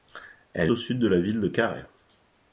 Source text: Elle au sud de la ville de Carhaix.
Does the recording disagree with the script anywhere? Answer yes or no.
no